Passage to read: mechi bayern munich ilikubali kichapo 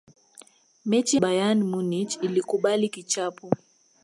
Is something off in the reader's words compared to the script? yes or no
no